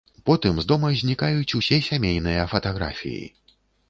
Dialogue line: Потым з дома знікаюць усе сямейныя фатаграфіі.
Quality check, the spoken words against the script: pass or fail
pass